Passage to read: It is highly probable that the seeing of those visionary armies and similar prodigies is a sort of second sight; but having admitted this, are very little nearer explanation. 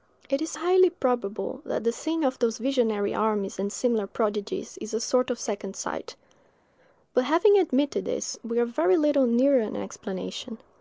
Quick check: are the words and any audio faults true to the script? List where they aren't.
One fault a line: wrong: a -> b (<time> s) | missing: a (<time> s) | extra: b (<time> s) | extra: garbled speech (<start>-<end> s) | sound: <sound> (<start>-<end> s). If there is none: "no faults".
extra: we (8.4 s)
extra: an (9.6 s)